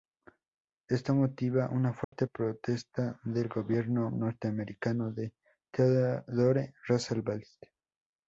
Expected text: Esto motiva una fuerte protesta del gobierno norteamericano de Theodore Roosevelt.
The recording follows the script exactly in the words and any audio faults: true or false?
false